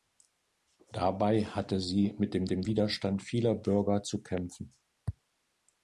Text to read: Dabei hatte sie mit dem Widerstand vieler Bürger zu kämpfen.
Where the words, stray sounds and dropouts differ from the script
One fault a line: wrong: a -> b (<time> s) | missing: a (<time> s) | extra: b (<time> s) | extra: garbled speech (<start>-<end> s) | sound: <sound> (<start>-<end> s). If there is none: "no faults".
extra: dem (2.5 s)